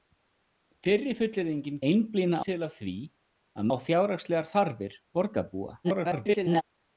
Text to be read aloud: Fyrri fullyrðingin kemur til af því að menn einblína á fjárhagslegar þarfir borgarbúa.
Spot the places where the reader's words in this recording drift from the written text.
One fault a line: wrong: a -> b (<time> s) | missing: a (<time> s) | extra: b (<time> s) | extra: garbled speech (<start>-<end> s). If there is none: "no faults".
wrong: kemur -> einblína (1.9 s)
missing: menn einblína (3.7 s)
extra: garbled speech (5.8-6.6 s)